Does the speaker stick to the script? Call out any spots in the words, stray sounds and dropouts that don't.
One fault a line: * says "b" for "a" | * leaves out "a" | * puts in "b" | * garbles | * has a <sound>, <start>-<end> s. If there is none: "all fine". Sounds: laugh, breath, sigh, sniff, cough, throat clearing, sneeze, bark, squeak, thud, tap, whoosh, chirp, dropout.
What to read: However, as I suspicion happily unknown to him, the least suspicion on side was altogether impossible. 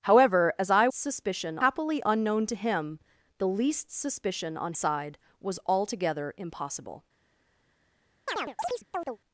* has a chirp, 8.3-9.2 s